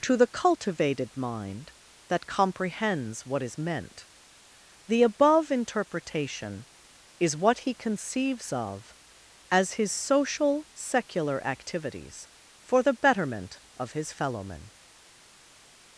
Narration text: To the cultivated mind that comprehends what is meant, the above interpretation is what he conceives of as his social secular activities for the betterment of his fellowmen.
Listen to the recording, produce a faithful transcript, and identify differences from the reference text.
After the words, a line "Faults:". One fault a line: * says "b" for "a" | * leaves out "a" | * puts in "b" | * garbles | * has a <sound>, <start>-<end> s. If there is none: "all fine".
To the cultivated mind that comprehends what is meant, the above interpretation is what he conceives of as his social secular activities for the betterment of his fellowmen.
Faults:
all fine